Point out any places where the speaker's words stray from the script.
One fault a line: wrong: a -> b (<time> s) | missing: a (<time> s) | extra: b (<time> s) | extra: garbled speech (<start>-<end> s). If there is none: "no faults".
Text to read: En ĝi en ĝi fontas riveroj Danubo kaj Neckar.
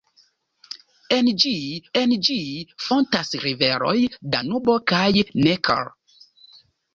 no faults